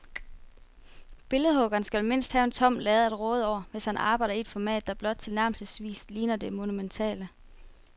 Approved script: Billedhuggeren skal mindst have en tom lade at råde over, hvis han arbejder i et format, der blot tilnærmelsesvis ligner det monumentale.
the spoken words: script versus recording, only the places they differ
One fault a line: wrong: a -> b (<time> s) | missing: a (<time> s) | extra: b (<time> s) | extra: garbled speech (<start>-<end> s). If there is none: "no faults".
no faults